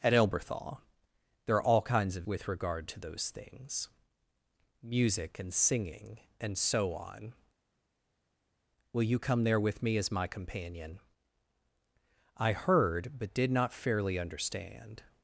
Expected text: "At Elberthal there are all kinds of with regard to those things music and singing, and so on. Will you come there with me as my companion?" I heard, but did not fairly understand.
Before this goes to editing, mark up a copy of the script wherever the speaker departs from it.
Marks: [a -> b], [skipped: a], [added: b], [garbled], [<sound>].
"At Elberthal there are all kinds of with regard to those things music and singing, and so on. Will you come there with me as my companion?" I heard, but did not fairly understand.